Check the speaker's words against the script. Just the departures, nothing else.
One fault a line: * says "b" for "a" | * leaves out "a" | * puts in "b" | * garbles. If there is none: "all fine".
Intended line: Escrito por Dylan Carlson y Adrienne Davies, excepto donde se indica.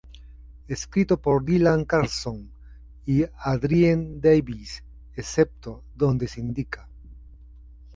all fine